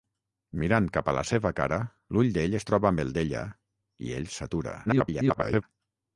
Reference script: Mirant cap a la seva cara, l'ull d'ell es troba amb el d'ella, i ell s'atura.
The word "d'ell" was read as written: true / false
true